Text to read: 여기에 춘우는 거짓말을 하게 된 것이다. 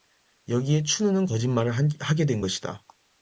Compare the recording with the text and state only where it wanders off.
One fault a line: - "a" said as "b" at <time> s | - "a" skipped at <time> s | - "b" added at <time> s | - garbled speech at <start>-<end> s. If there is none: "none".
none